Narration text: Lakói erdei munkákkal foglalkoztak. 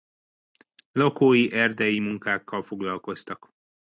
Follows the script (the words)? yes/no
yes